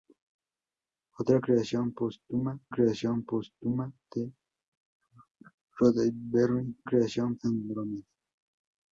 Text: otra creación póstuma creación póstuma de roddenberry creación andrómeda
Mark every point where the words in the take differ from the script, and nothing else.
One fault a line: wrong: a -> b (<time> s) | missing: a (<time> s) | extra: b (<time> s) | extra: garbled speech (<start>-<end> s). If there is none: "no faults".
no faults